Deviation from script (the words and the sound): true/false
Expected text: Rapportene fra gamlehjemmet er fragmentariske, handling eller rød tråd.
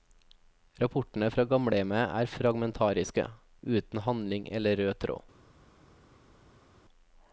true